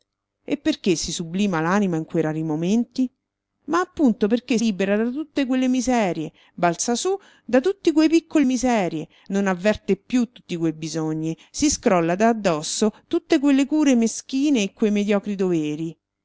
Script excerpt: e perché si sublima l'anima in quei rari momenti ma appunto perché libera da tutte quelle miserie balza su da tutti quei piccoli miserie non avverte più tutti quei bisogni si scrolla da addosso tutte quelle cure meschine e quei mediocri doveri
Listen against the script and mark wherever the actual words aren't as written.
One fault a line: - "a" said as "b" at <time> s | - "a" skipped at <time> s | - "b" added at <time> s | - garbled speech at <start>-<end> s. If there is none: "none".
none